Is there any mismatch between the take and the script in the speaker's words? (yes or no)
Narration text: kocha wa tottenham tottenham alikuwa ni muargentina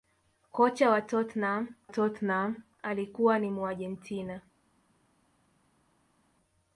no